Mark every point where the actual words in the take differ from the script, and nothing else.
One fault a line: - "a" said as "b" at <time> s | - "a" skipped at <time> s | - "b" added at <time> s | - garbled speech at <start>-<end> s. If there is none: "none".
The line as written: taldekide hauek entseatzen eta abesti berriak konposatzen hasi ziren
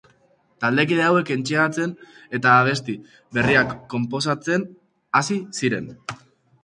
none